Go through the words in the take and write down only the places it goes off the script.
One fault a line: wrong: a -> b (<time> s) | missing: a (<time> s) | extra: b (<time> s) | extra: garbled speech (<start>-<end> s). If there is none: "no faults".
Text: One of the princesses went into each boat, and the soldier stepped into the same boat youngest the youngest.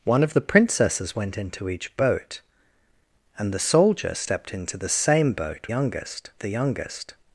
no faults